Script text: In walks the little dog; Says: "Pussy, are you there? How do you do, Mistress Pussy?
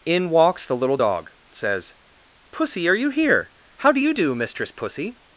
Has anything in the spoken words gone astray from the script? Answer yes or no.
yes